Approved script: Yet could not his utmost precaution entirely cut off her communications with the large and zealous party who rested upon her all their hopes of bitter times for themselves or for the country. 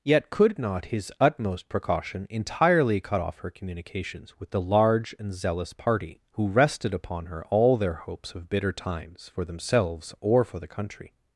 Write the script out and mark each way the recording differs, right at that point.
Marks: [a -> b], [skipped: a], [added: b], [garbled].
Yet could not his utmost precaution entirely cut off her communications with the large and zealous party who rested upon her all their hopes of bitter times for themselves or for the country.